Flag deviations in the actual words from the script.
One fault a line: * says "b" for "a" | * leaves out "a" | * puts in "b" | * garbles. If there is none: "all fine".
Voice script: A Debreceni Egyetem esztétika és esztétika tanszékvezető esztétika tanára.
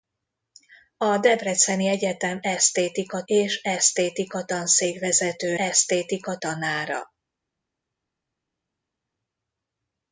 all fine